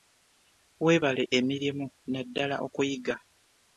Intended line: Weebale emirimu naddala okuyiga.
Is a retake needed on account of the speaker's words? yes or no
no